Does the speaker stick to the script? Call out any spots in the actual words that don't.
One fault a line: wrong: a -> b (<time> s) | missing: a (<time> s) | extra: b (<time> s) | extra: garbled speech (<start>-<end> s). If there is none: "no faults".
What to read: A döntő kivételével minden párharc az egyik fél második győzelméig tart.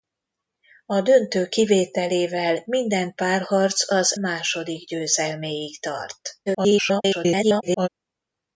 missing: egyik fél (4.2 s)
extra: garbled speech (6.5-7.9 s)